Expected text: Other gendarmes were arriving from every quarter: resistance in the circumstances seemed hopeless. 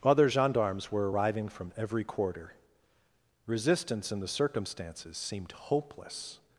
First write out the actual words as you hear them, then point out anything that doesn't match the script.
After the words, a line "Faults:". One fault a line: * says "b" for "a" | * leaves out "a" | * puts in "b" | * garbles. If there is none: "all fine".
Other gendarmes were arriving from every quarter: resistance in the circumstances seemed hopeless.
Faults:
all fine